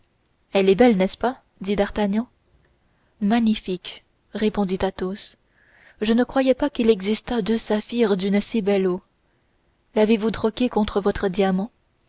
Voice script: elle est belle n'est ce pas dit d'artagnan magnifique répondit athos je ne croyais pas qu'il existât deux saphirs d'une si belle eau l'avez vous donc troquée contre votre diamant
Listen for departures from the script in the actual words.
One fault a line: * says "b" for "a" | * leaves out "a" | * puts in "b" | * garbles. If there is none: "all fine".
* leaves out "donc"